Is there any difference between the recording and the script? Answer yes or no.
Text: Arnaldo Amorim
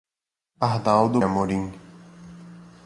no